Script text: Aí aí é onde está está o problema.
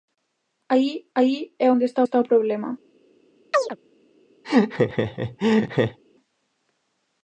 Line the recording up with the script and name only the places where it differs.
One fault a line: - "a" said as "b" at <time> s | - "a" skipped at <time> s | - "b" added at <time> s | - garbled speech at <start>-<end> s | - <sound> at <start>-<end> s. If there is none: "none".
- chirp at 3.5-3.8 s
- laugh at 4.4-6.0 s